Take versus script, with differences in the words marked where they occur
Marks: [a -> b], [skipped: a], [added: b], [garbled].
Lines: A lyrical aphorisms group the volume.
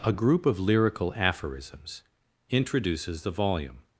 A [added: group of] lyrical aphorisms [group -> introduces] the volume.